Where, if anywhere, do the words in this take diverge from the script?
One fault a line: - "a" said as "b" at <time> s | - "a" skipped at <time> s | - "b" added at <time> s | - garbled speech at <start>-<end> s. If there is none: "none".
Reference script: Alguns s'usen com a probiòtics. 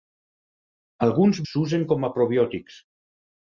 none